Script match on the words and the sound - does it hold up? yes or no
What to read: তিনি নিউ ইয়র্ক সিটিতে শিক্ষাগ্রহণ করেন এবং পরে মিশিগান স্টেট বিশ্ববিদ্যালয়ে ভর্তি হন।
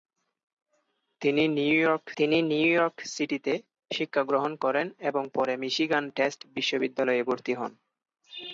no